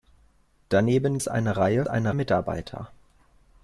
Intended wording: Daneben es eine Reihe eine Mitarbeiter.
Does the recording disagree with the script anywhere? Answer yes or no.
no